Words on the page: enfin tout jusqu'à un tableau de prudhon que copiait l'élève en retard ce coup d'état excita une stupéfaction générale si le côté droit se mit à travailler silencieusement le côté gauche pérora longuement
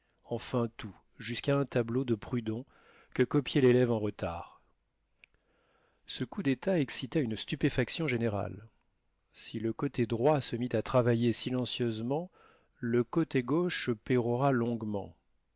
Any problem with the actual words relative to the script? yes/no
no